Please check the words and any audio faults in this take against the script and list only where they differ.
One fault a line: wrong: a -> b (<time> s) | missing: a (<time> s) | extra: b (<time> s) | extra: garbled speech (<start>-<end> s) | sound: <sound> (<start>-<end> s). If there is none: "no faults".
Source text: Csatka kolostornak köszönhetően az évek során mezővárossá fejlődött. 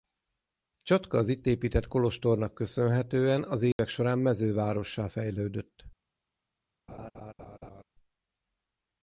extra: az itt épített (1.2 s)
sound: dropout (3.7-3.8 s)
sound: laugh (6.9-7.8 s)